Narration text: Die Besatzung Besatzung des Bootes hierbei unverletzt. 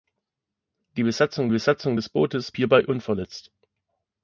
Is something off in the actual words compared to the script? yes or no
no